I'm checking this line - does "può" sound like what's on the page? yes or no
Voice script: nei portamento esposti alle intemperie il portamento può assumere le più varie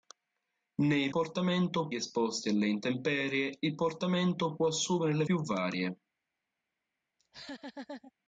yes